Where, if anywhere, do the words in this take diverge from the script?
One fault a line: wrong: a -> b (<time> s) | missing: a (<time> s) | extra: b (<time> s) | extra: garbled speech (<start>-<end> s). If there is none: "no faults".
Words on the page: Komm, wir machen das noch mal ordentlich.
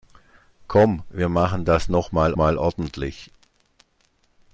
extra: mal (2.3 s)